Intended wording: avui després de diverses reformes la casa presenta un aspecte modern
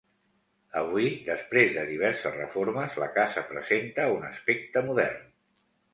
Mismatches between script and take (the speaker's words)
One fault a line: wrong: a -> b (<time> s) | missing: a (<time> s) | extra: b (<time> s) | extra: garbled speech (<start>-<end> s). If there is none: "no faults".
no faults